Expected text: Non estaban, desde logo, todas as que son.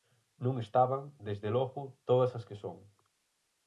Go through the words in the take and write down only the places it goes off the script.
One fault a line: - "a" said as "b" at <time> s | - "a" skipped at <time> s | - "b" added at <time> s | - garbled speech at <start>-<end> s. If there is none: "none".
none